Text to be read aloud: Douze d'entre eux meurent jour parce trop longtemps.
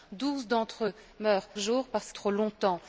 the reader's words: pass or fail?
pass